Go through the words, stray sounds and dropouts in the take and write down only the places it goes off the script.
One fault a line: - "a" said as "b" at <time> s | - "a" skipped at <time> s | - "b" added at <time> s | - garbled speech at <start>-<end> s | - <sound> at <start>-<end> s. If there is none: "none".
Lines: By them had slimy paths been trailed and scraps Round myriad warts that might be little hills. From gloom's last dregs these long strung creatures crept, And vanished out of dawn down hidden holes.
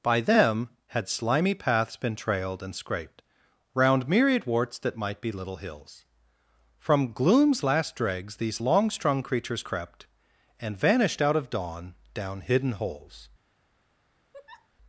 - "scraps" said as "scraped" at 2.8 s
- laugh at 14.3-14.7 s